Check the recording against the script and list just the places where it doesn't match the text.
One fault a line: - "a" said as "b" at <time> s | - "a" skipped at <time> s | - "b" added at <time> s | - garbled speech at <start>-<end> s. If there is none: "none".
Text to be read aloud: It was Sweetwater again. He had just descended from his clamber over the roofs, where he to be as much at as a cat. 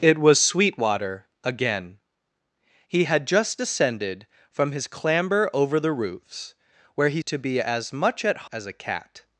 none